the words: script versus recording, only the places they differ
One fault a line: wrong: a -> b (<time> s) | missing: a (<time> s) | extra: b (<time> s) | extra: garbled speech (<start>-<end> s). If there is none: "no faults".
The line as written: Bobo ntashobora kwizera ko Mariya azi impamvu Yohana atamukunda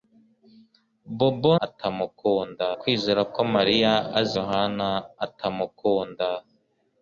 wrong: ntashobora -> atamukunda (1.7 s)
missing: impamvu (4.3 s)